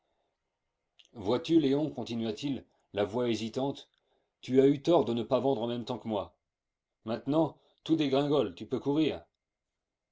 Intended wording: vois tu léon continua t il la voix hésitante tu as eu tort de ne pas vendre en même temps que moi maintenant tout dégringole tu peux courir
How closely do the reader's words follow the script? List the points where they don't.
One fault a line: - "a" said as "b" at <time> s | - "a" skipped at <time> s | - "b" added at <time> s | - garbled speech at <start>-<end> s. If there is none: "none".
none